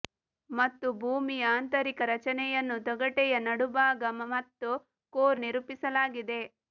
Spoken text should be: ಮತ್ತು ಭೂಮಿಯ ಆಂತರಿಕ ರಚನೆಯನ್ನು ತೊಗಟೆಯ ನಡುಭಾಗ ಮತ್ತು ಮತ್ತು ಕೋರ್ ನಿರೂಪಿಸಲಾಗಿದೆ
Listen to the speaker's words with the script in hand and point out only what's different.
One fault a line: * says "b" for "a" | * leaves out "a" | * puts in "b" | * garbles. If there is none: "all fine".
* leaves out "ಮತ್ತು"